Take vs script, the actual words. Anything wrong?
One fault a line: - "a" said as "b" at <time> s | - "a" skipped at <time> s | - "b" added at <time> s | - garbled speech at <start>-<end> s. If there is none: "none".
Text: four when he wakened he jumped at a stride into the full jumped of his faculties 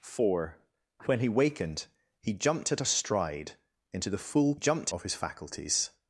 none